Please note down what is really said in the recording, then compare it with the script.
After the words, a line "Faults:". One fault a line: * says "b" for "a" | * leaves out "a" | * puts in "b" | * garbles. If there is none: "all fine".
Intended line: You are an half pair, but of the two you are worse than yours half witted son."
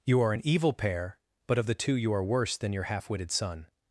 You are an evil pair, but of the two you are worse than your half witted son."
Faults:
* says "evil" for "half"
* says "your" for "yours"